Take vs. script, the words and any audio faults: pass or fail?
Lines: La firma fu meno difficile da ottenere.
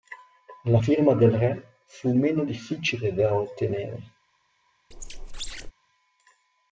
fail